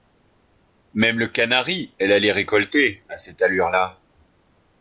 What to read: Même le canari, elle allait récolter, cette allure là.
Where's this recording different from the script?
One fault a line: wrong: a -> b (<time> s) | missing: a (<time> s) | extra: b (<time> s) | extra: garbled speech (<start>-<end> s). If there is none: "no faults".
extra: à (3.1 s)